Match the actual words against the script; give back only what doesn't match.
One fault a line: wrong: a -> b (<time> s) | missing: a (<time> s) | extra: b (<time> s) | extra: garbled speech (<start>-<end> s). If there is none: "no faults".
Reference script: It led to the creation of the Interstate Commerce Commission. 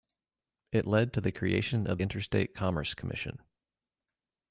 missing: the (2.0 s)